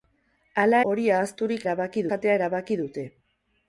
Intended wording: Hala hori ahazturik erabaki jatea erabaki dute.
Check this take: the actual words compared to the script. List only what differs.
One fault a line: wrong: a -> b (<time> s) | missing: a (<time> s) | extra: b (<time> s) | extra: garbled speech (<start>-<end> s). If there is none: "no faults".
no faults